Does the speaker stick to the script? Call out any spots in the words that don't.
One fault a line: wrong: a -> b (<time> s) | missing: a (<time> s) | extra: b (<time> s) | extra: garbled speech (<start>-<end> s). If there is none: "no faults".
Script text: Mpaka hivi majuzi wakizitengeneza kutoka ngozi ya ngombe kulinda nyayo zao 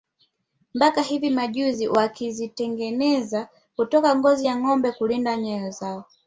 no faults